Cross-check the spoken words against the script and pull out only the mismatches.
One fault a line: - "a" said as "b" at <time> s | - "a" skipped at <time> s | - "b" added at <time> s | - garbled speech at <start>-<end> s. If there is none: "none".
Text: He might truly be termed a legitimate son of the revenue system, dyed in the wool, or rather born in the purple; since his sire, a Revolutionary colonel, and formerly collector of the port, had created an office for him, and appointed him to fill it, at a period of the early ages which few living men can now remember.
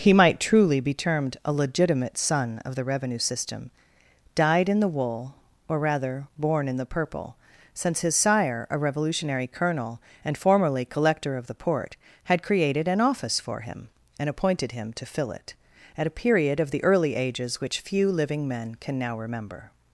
none